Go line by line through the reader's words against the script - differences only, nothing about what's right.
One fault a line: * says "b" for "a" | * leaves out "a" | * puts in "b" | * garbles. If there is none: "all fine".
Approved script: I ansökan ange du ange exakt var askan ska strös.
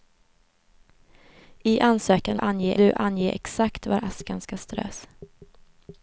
all fine